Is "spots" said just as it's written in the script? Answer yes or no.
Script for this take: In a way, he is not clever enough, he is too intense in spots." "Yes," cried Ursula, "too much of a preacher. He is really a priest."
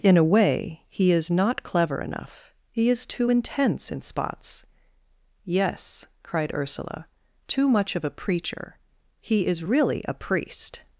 yes